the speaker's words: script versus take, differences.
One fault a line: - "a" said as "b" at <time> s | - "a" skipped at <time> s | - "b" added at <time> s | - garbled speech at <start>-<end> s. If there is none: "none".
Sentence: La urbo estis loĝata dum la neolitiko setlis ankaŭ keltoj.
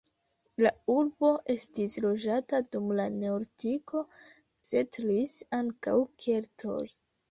none